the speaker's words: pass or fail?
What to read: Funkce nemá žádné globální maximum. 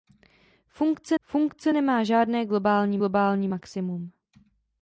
fail